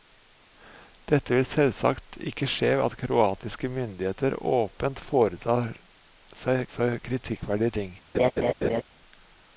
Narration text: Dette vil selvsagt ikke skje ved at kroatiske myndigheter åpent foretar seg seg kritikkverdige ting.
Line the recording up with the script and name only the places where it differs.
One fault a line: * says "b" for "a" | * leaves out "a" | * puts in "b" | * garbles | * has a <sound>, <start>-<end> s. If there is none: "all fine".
* has a laugh, 8.1-8.8 s